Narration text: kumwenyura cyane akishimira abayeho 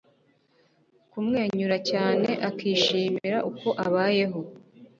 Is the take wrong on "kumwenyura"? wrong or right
right